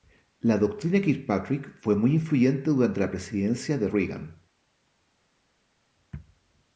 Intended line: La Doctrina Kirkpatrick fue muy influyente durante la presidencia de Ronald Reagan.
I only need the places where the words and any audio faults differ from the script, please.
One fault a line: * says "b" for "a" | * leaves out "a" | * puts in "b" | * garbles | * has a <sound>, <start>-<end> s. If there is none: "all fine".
* leaves out "Ronald"